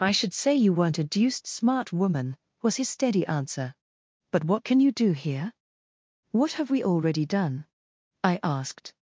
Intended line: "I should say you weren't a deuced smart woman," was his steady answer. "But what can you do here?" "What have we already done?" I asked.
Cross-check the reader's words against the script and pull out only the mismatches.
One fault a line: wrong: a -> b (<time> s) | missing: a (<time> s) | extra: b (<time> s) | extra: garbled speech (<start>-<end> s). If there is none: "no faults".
no faults